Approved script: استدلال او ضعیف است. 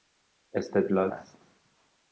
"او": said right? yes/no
no